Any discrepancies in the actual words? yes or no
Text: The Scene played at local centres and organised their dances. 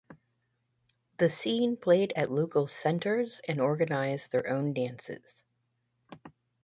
yes